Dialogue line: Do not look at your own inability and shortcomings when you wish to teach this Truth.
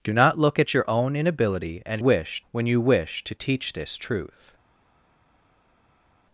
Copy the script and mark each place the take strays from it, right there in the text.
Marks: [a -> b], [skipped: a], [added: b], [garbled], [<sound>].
Do not look at your own inability and [shortcomings -> wish] when you wish to teach this Truth.